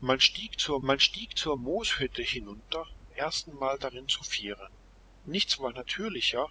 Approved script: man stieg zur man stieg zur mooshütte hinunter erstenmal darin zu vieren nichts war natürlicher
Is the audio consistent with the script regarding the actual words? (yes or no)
yes